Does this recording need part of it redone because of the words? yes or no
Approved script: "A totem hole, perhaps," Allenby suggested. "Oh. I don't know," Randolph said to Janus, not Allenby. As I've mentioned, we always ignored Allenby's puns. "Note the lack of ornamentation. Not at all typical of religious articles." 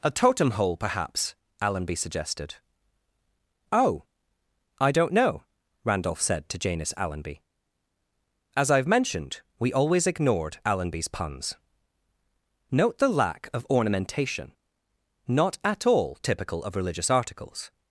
yes